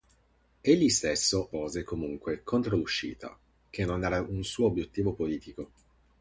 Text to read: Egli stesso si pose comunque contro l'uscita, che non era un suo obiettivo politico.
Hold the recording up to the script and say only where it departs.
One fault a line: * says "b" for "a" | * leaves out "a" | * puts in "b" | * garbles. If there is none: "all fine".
* leaves out "si"